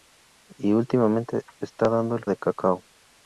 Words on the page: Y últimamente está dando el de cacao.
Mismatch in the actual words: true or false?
false